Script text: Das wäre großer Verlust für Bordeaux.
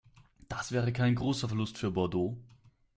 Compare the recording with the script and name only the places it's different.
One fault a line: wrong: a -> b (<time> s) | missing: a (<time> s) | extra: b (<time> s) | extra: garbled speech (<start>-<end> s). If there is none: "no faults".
extra: kein (0.9 s)